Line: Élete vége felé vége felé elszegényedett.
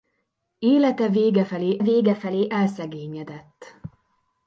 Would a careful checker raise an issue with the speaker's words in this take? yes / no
no